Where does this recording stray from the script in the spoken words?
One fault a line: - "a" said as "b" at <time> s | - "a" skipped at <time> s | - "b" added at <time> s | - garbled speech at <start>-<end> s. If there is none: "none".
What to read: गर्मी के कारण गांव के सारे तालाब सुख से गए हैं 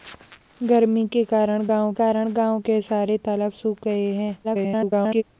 - "कारण गांव" added at 1.9 s
- "से" skipped at 3.8 s
- garbled speech at 4.4-5.2 s